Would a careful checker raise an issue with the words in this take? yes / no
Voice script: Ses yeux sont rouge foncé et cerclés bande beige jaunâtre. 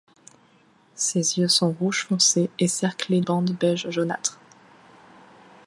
no